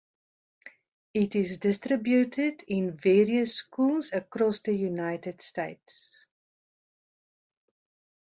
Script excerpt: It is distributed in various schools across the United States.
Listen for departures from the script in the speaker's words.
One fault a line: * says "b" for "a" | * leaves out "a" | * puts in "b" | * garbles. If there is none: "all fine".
all fine